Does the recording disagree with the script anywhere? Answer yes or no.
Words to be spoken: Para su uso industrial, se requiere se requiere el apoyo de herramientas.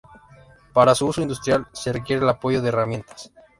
yes